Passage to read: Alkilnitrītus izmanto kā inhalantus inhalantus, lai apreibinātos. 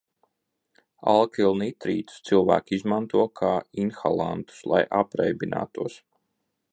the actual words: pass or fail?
fail